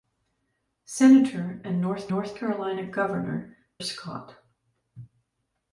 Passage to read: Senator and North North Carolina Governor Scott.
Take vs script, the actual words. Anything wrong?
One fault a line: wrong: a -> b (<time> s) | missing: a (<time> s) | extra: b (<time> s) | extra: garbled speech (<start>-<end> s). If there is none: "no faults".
no faults